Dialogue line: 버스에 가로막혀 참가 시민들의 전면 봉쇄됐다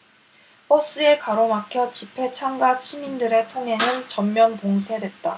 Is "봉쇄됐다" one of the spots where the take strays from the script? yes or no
no